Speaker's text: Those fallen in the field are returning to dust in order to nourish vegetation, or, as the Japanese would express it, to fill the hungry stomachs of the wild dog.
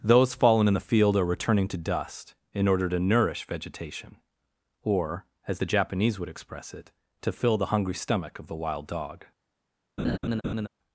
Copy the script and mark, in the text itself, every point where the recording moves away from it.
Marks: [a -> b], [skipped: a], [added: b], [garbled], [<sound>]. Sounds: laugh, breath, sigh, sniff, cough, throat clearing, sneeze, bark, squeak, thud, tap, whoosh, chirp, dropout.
Those fallen in the field are returning to dust in order to nourish vegetation, or, as the Japanese would express it, to fill the hungry [stomachs -> stomach] of the wild dog. [laugh]